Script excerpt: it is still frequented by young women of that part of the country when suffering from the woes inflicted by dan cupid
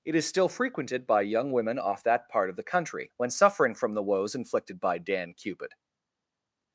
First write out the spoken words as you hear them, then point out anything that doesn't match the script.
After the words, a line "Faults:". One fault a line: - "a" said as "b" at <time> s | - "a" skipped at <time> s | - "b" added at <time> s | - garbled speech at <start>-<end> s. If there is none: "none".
it is still frequented by young women off that part of the country when suffering from the woes inflicted by dan cupid
Faults:
- "of" said as "off" at 1.8 s